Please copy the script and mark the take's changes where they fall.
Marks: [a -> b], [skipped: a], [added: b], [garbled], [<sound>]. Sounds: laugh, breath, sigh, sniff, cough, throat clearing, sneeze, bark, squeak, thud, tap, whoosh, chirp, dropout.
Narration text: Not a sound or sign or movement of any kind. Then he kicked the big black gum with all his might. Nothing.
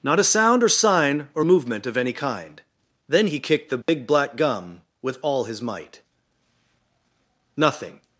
Not a sound or sign or movement of any kind. Then he kicked the big [dropout] black gum with all his might. Nothing.